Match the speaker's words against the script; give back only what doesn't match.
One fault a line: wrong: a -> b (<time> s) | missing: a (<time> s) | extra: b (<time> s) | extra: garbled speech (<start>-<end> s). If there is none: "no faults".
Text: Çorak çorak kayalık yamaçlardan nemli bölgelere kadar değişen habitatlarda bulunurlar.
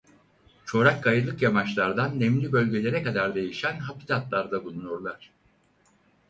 missing: çorak (1.0 s)